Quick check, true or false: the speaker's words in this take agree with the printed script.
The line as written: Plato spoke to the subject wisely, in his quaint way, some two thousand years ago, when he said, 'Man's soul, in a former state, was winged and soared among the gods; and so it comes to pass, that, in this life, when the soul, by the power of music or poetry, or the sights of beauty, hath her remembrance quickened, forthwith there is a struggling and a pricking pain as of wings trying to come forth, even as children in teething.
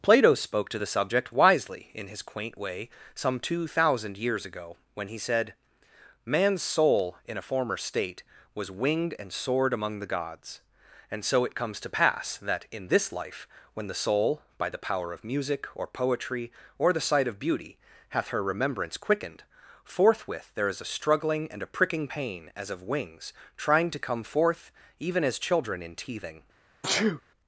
false